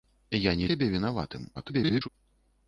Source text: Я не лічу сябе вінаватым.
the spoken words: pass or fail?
fail